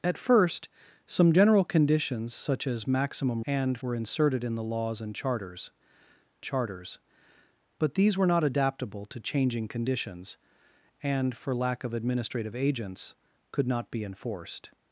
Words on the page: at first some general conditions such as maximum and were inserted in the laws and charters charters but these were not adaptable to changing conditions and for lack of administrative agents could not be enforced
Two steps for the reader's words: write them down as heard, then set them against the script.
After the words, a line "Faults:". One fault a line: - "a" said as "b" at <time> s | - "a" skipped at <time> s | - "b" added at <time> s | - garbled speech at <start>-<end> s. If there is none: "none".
at first some general conditions such as maximum and were inserted in the laws and charters charters but these were not adaptable to changing conditions and for lack of administrative agents could not be enforced
Faults:
none